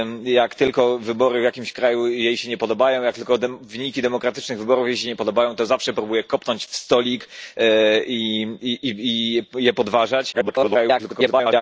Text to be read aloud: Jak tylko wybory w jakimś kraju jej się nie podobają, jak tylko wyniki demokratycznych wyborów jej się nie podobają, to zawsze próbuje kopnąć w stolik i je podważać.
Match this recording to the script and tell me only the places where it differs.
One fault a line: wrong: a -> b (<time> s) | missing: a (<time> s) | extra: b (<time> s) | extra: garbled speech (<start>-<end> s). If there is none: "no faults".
extra: garbled speech (10.3-11.6 s)